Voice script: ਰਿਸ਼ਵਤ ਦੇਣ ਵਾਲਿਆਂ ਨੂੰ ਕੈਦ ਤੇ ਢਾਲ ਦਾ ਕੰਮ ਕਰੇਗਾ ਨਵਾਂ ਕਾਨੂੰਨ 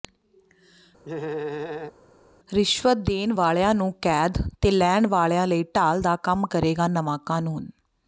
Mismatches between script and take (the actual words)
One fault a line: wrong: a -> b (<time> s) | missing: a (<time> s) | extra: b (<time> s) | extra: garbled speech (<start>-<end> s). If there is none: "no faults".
extra: ਲੈਣ ਵਾਲਿਆਂ ਲਈ (4.7 s)